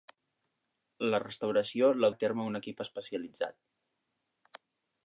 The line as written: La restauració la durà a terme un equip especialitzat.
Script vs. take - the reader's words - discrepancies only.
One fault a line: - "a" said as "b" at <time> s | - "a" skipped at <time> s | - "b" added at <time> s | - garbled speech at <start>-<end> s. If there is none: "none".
- "durà" skipped at 2.1 s